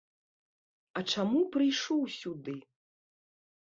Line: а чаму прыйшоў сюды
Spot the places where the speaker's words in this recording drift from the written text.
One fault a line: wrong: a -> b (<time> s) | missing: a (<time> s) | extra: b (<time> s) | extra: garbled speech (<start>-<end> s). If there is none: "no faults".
no faults